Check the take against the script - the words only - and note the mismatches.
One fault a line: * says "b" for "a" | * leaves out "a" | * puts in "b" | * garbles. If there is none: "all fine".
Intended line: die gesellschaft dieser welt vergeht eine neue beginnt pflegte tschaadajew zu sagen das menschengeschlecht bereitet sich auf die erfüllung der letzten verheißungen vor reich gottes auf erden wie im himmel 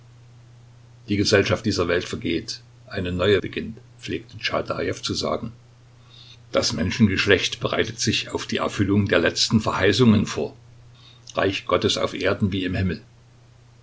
all fine